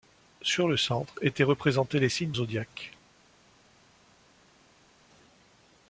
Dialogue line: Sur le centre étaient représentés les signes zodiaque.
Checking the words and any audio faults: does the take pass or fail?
pass